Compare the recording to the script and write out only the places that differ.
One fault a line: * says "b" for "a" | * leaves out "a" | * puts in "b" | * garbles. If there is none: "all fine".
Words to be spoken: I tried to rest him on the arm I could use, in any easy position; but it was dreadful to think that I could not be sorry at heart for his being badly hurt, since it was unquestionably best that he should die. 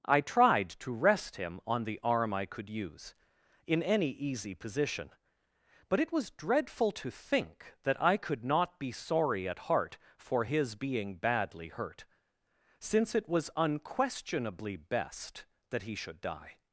all fine